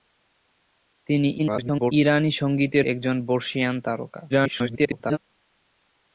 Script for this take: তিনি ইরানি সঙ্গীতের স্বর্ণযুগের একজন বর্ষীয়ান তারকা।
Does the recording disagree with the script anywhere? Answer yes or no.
yes